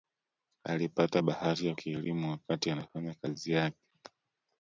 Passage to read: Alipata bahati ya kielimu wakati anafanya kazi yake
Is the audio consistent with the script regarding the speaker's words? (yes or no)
yes